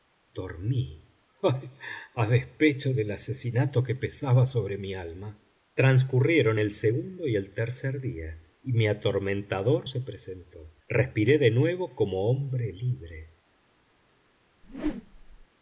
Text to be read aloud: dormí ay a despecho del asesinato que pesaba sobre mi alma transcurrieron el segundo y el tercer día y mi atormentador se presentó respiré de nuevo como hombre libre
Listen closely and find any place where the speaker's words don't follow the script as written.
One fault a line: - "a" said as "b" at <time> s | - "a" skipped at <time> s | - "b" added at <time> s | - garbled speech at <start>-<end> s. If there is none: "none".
none